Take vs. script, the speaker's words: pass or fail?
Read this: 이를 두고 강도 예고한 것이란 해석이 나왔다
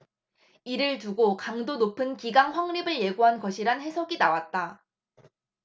fail